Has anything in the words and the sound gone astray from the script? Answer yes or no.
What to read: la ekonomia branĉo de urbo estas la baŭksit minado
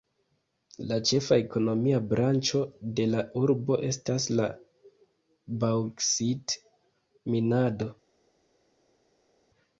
yes